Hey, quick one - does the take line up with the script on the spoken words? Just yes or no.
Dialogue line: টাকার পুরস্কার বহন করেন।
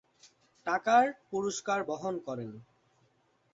yes